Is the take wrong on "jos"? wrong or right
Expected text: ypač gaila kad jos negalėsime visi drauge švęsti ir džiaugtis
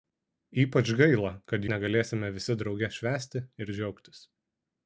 wrong